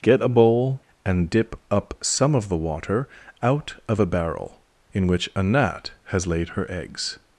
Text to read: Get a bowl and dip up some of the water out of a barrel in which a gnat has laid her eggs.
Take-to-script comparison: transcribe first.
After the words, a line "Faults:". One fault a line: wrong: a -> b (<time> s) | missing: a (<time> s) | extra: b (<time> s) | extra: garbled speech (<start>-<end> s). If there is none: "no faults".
Get a bowl and dip up some of the water out of a barrel in which a gnat has laid her eggs.
Faults:
no faults